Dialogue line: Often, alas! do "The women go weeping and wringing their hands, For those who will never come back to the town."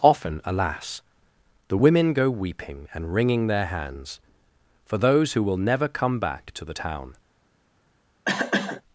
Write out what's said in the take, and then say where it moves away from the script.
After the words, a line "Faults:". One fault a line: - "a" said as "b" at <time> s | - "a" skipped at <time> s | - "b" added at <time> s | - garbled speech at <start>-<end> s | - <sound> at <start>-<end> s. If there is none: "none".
Often, alas! "The women go weeping and wringing their hands, For those who will never come back to the town."
Faults:
- "do" skipped at 1.0 s
- cough at 8.2-8.8 s